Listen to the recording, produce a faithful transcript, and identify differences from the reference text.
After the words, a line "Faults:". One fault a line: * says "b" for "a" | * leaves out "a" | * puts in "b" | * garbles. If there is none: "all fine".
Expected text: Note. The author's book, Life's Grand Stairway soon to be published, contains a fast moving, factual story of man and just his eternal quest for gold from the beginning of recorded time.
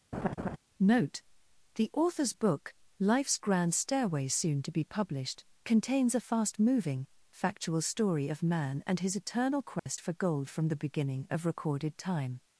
Note. The author's book, Life's Grand Stairway soon to be published, contains a fast moving, factual story of man and his eternal quest for gold from the beginning of recorded time.
Faults:
* leaves out "just"